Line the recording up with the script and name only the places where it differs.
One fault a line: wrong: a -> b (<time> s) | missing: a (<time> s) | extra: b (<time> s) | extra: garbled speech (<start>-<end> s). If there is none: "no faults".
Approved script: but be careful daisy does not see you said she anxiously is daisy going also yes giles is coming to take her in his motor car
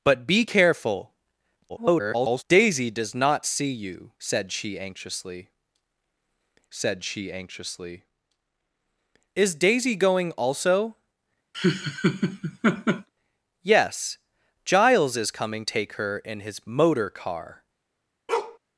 extra: garbled speech (1.7-2.4 s)
extra: said she anxiously (6.7 s)
missing: to (15.6 s)